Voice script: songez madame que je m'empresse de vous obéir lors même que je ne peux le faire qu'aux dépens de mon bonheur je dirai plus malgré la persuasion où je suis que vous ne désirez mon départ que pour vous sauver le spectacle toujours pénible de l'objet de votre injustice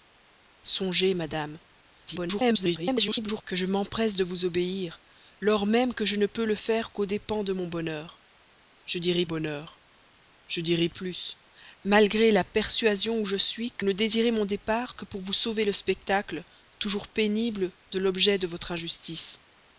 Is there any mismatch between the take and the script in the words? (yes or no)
yes